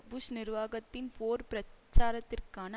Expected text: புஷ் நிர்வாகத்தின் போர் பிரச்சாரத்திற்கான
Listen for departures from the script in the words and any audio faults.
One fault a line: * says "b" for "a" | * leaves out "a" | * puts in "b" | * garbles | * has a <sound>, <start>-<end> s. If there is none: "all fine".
all fine